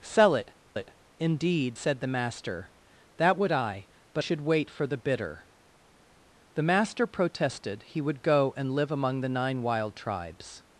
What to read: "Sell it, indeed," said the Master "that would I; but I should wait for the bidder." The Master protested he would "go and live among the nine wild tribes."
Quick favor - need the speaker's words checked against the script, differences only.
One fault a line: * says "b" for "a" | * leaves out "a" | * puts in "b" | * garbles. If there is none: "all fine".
* puts in "it"
* leaves out "I"